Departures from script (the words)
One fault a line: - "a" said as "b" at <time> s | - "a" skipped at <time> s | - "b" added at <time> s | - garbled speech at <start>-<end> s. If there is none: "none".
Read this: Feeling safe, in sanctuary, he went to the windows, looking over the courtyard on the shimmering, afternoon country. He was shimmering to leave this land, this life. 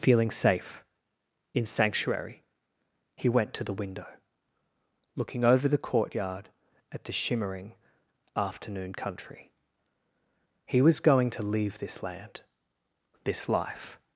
- "windows" said as "window" at 3.8 s
- "on" said as "at" at 6.9 s
- "shimmering" said as "going" at 11.0 s